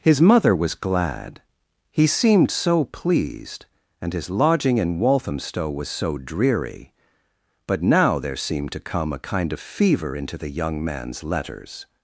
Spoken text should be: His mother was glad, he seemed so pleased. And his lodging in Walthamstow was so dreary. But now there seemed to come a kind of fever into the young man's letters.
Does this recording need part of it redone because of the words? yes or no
no